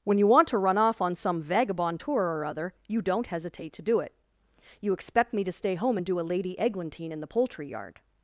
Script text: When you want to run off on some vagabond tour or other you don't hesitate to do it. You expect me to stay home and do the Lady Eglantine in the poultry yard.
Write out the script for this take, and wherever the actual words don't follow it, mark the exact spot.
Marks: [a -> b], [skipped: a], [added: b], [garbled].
When you want to run off on some vagabond tour or other you don't hesitate to do it. You expect me to stay home and do [the -> a] Lady Eglantine in the poultry yard.